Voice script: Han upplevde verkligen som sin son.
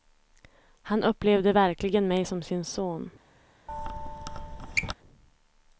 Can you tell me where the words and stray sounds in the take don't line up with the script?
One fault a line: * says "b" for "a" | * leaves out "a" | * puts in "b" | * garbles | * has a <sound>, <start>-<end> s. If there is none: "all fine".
* puts in "mig"
* has a squeak, 3.7-4.9 s